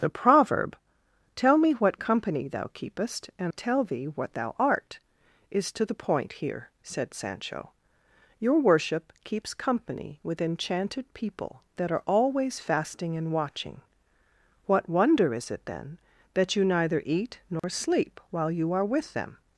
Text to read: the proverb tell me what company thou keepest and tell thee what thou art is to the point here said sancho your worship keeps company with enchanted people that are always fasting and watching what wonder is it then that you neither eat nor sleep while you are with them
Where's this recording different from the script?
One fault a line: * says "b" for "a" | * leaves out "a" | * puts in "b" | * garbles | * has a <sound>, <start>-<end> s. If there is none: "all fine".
* has a dropout, 17.6-17.6 s